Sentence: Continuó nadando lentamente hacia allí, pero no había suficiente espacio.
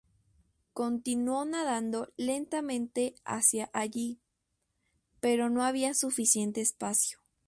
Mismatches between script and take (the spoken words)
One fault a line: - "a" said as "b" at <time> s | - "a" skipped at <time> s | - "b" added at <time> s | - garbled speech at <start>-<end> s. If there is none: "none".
none